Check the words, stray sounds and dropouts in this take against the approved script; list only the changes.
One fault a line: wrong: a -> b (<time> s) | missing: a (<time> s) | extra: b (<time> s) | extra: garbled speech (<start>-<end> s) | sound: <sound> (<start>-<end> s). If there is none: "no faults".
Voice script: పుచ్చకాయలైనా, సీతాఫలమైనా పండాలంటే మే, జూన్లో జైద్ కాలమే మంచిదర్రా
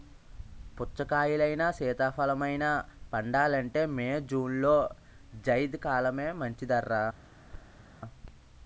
sound: thud (7.5-7.8 s)